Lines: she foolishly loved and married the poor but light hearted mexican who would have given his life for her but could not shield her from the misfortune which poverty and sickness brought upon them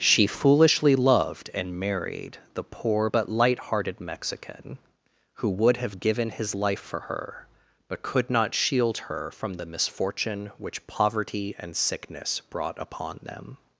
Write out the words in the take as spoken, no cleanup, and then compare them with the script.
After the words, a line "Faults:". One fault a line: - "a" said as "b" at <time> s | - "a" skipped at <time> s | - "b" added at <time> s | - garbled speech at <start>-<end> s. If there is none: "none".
she foolishly loved and married the poor but light hearted mexican who would have given his life for her but could not shield her from the misfortune which poverty and sickness brought upon them
Faults:
none